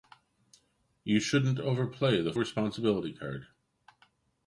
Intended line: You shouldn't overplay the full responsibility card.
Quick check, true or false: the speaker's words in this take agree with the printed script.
false